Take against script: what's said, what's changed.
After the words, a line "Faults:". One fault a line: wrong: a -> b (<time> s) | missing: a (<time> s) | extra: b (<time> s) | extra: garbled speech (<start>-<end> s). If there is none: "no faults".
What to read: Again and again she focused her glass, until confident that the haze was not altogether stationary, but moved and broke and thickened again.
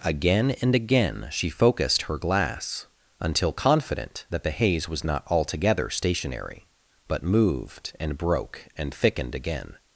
Again and again she focused her glass, until confident that the haze was not altogether stationary, but moved and broke and thickened again.
Faults:
no faults